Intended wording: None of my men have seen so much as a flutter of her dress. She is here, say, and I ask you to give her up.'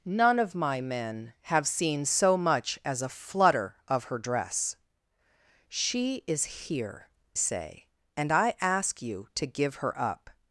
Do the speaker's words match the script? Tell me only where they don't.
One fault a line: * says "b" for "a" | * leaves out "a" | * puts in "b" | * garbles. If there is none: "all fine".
all fine